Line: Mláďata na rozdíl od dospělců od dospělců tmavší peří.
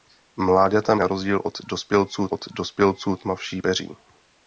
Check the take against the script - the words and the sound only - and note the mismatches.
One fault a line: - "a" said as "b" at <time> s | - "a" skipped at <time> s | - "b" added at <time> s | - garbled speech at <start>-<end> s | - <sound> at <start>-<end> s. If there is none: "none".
none